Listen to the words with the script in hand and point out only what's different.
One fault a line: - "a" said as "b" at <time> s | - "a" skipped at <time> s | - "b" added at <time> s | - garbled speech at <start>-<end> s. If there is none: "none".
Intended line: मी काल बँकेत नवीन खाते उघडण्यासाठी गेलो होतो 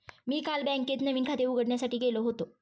none